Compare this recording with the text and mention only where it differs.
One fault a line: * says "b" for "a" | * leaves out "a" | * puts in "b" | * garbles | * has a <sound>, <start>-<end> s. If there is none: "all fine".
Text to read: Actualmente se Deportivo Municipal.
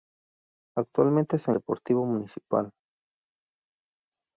all fine